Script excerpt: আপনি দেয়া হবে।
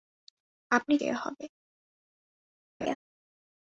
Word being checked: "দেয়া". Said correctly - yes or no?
yes